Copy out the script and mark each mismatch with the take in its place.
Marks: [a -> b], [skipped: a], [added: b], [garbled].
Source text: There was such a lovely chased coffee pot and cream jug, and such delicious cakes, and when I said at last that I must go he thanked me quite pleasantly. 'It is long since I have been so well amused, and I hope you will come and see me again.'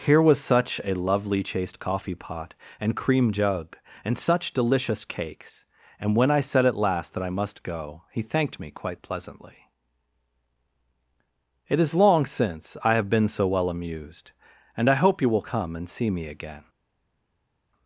[There -> Here] was such a lovely chased coffee pot and cream jug, and such delicious cakes, and when I said at last that I must go he thanked me quite pleasantly. 'It is long since I have been so well amused, and I hope you will come and see me again.'